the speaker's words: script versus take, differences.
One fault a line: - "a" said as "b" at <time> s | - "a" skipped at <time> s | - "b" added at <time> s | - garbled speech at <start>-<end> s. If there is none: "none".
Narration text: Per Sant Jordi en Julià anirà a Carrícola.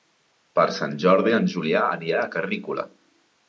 none